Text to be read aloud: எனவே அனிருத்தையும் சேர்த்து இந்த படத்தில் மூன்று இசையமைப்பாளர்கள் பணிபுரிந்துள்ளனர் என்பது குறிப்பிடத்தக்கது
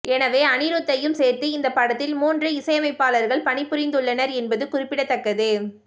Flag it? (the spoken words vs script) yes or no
no